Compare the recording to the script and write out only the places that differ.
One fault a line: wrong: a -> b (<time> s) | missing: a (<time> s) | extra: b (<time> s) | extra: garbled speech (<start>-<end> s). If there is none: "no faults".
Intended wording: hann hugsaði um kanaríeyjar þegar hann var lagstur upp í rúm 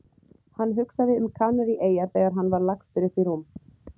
no faults